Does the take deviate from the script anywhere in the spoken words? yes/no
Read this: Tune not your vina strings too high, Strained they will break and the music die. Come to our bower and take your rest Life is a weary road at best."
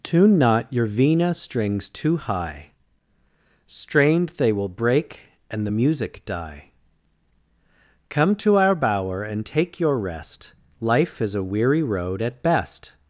no